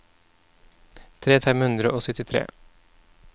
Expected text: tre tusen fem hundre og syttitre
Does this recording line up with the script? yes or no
no